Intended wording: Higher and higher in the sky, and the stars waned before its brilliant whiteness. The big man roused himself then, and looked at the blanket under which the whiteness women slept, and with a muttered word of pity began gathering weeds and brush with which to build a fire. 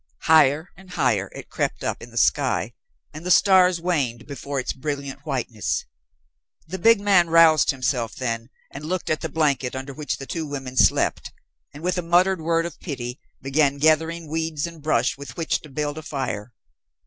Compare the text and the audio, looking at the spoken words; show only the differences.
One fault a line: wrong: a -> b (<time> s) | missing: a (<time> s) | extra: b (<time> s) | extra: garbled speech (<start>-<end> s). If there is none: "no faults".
extra: it crept up (1.4 s)
wrong: whiteness -> two (10.2 s)